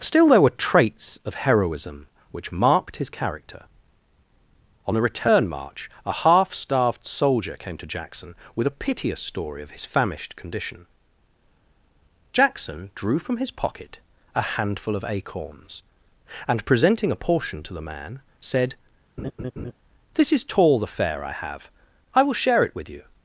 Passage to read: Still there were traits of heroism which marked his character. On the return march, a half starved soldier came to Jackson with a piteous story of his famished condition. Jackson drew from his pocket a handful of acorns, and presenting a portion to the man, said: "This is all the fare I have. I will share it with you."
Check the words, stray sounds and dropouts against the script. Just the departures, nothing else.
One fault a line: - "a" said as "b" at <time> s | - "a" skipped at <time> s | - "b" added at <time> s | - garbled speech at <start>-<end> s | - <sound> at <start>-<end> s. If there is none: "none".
- laugh at 19.2-19.7 s
- "all" said as "tall" at 20.4 s